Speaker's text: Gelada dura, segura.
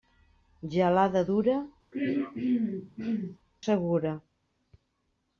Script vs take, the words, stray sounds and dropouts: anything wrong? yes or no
yes